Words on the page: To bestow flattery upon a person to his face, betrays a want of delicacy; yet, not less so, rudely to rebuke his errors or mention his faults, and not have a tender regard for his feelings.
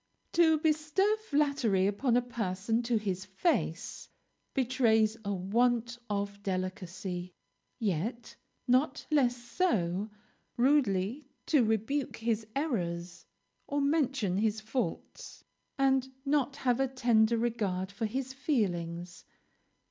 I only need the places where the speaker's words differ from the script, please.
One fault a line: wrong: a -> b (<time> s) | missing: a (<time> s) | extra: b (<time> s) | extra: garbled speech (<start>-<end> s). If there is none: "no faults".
no faults